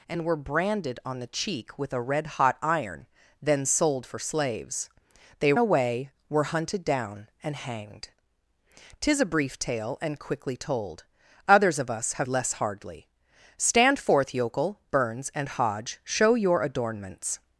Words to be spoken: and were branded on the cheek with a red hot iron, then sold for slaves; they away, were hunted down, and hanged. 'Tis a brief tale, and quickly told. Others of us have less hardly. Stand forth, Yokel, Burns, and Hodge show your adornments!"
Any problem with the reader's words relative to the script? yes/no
no